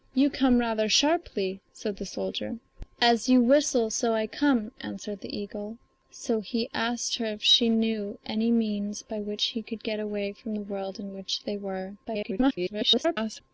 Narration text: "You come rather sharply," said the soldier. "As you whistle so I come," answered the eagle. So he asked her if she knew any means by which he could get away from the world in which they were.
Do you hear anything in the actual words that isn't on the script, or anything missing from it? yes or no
yes